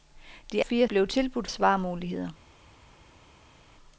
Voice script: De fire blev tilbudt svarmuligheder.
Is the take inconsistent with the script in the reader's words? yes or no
no